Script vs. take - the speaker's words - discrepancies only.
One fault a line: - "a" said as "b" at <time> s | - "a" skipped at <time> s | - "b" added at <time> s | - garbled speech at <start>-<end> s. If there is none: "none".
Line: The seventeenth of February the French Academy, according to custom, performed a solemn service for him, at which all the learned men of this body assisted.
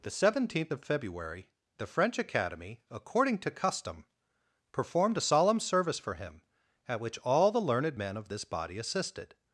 none